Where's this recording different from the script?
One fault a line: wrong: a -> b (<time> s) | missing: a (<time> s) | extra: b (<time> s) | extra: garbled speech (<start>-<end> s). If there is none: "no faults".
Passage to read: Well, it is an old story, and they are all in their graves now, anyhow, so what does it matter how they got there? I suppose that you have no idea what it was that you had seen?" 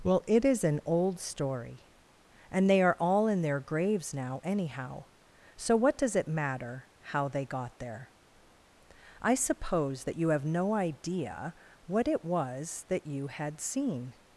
no faults